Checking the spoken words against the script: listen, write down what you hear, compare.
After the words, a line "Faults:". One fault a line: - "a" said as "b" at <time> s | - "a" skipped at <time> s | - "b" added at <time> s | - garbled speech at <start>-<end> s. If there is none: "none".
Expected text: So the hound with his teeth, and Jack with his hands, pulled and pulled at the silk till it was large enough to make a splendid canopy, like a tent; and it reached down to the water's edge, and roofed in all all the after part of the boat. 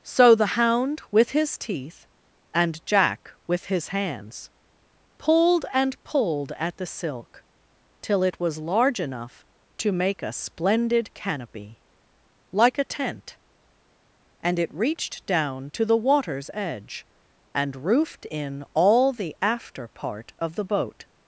So the hound with his teeth, and Jack with his hands, pulled and pulled at the silk till it was large enough to make a splendid canopy, like a tent; and it reached down to the water's edge, and roofed in all the after part of the boat.
Faults:
- "all" skipped at 19.1 s